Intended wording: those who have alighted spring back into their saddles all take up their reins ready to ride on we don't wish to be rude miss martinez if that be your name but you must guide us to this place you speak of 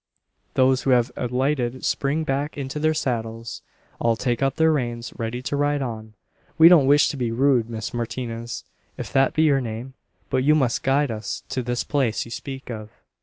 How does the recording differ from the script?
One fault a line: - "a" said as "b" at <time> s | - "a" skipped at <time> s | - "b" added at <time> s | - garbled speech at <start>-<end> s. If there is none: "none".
none